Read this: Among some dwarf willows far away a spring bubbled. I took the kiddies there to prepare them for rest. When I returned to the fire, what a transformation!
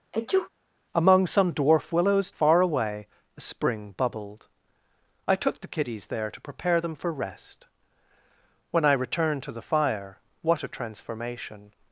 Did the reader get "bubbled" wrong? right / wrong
right